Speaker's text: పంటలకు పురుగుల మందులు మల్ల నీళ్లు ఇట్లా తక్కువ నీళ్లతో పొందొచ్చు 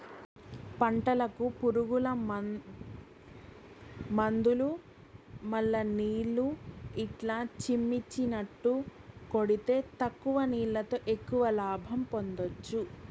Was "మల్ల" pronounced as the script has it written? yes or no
yes